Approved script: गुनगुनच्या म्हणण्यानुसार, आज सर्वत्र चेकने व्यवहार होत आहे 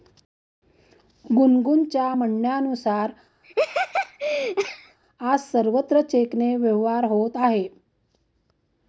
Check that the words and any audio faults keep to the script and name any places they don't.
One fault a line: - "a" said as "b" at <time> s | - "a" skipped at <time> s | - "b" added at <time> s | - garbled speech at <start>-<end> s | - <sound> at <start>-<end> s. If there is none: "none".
- laugh at 3.4-5.0 s